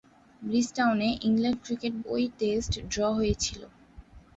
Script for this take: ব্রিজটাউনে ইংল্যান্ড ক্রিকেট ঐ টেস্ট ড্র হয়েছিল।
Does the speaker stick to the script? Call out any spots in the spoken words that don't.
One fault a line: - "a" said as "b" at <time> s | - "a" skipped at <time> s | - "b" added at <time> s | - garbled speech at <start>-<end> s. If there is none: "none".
none